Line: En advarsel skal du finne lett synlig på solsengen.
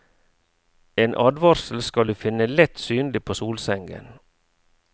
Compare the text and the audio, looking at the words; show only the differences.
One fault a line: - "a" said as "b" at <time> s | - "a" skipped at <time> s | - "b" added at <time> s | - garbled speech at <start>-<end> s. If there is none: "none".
none